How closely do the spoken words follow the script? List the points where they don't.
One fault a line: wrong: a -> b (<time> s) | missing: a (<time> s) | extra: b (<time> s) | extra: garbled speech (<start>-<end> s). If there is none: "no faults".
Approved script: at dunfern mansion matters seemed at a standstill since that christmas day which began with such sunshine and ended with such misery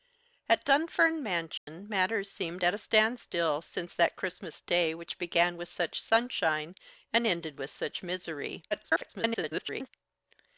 extra: garbled speech (8.7-9.9 s)